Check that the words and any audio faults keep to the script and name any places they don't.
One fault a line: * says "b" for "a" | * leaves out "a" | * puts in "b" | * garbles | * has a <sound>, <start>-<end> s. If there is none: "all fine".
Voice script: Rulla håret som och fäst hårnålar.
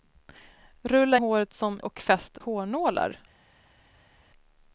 all fine